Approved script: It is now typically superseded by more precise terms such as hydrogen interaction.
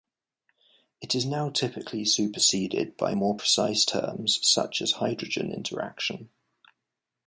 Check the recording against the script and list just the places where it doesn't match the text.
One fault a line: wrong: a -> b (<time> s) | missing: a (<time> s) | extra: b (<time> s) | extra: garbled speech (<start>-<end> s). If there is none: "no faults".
no faults